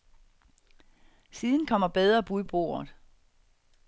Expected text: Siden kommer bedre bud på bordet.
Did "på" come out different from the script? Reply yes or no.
yes